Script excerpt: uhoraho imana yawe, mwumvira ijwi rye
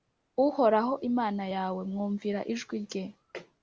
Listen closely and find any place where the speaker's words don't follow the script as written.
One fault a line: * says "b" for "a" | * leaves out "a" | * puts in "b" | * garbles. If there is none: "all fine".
all fine